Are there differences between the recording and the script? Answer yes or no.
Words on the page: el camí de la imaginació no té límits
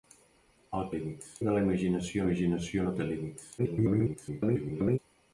yes